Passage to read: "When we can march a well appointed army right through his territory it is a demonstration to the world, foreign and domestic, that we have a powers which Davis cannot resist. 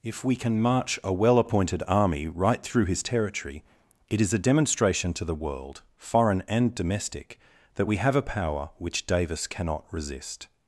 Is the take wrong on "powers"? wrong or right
wrong